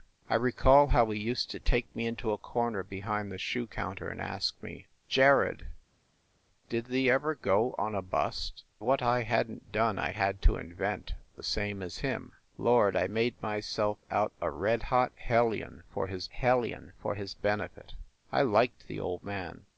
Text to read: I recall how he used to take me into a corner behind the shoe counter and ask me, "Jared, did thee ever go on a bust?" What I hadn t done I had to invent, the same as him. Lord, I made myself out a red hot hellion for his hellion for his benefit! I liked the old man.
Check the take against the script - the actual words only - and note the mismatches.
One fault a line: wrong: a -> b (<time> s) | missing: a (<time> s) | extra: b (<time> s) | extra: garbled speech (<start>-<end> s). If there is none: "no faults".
no faults